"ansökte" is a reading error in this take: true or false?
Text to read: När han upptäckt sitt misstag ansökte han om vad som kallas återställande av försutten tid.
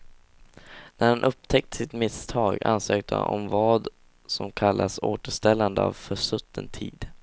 false